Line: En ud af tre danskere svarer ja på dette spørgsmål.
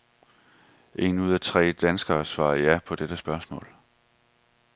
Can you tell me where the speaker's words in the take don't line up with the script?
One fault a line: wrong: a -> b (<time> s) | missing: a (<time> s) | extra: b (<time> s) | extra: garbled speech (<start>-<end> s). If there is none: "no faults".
no faults